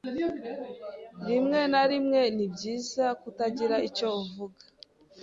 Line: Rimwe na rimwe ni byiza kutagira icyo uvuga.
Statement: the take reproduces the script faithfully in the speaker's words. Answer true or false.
true